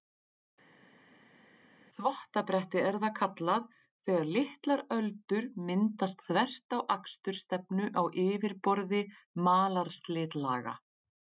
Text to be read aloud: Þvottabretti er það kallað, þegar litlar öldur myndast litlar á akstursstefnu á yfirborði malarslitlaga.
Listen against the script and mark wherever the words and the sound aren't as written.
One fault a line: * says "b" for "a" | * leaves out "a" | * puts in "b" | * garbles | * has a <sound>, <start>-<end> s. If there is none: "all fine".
* says "þvert" for "litlar"